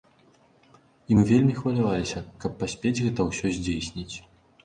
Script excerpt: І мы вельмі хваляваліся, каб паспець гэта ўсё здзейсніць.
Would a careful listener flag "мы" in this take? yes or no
no